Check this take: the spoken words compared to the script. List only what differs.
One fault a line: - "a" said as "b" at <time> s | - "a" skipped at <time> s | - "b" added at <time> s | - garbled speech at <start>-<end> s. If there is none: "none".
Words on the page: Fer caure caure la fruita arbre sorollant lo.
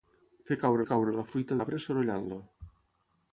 none